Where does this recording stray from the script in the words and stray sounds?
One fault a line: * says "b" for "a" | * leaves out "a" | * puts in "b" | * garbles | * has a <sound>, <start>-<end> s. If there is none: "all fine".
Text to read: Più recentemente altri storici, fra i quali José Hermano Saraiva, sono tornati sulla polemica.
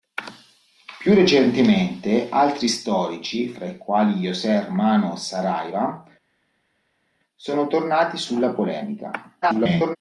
* garbles